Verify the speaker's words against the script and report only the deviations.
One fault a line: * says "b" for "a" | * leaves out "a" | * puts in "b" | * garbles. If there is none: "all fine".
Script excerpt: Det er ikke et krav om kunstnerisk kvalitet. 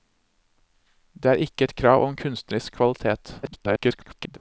* garbles